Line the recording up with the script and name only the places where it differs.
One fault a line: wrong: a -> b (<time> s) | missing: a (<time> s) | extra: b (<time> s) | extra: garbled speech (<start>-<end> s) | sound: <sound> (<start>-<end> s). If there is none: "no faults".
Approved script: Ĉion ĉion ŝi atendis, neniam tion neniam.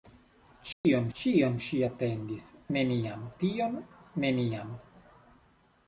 sound: dropout (0.7-0.8 s)